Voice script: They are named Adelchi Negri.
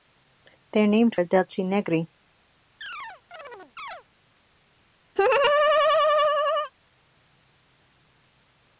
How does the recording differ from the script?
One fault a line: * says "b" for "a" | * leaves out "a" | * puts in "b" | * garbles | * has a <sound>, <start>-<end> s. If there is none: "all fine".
* has a chirp, 2.8-4.0 s
* has a laugh, 5.2-6.7 s